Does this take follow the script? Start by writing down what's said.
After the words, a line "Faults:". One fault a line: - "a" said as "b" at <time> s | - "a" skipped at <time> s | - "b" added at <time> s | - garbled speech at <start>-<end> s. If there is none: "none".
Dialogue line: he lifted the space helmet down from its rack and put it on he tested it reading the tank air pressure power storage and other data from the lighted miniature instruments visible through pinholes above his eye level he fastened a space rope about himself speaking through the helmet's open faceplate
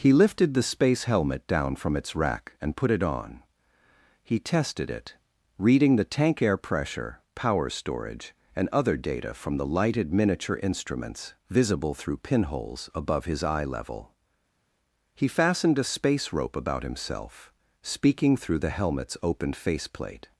he lifted the space helmet down from its rack and put it on he tested it reading the tank air pressure power storage and other data from the lighted miniature instruments visible through pinholes above his eye level he fastened a space rope about himself speaking through the helmet's open faceplate
Faults:
none